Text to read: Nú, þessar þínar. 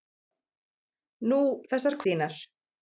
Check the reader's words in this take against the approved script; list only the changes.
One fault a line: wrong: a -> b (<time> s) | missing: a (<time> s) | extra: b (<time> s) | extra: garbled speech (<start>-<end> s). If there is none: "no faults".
no faults